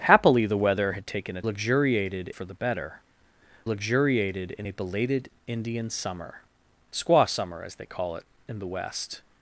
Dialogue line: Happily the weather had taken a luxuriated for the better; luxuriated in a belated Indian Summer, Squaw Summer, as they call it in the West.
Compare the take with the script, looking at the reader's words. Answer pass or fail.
pass